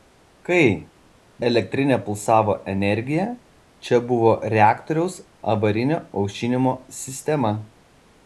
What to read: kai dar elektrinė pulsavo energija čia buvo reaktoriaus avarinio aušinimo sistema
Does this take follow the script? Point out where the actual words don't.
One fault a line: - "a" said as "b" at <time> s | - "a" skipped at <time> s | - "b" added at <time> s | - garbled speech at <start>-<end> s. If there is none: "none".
- "dar" skipped at 0.6 s